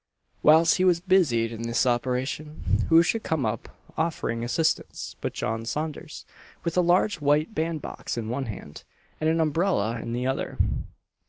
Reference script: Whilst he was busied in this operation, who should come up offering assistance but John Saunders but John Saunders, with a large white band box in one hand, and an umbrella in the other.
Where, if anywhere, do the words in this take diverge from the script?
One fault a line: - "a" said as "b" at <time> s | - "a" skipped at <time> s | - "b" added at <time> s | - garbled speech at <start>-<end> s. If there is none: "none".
- "but John Saunders" skipped at 6.2 s